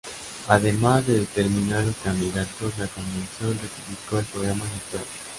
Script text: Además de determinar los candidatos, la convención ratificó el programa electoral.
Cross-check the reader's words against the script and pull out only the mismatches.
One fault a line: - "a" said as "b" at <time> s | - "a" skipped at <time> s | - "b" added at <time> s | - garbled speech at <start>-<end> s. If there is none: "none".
none